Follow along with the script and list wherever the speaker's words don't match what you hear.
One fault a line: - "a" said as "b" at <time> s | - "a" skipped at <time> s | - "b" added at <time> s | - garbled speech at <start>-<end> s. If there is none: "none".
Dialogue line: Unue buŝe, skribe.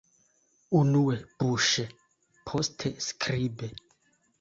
- "poste" added at 2.5 s